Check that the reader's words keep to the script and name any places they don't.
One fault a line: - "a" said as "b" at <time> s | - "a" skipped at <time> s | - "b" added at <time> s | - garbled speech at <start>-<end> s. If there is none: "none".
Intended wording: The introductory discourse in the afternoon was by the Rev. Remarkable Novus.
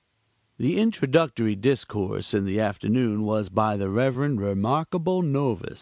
none